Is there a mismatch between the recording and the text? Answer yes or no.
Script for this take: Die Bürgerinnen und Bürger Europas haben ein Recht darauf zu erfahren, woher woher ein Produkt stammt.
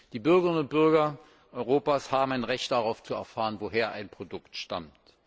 yes